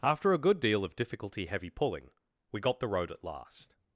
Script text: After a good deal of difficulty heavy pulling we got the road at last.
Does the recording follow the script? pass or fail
pass